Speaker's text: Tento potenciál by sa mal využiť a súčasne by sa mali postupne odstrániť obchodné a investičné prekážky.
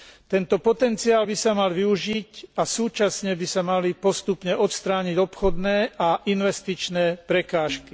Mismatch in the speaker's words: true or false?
false